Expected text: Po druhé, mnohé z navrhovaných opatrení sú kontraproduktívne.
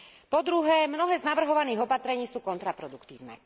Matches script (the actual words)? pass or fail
pass